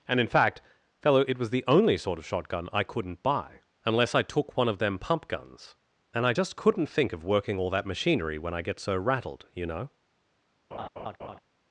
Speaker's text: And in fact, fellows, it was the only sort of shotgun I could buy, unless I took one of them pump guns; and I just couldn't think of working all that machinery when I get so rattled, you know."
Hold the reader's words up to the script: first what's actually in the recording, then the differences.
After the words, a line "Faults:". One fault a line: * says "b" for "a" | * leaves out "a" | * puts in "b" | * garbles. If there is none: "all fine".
And in fact, fellow, it was the only sort of shotgun I couldn't buy, unless I took one of them pump guns; and I just couldn't think of working all that machinery when I get so rattled, you know."
Faults:
* says "fellow" for "fellows"
* says "couldn't" for "could"